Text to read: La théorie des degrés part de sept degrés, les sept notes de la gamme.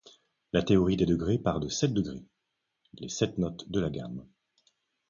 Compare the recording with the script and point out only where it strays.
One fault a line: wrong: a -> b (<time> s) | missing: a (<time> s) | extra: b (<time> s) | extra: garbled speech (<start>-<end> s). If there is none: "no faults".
no faults